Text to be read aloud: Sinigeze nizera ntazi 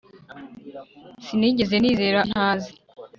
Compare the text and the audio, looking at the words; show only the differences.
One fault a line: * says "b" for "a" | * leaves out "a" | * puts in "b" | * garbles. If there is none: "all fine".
all fine